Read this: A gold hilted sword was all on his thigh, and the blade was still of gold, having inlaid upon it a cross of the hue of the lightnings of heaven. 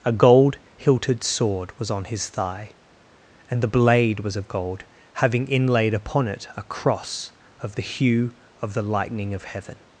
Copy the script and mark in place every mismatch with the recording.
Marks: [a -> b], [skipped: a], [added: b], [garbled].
A gold hilted sword was [skipped: all] on his thigh, and the blade was [skipped: still] of gold, having inlaid upon it a cross of the hue of the [lightnings -> lightning] of heaven.